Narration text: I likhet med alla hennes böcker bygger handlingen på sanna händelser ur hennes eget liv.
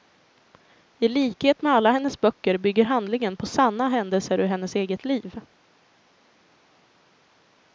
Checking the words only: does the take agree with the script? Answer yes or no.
yes